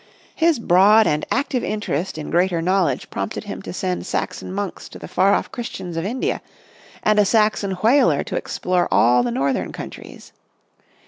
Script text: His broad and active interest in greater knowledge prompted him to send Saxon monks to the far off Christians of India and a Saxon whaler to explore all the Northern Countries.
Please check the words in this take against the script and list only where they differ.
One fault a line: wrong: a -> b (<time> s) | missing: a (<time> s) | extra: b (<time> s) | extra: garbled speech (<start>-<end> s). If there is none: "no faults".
no faults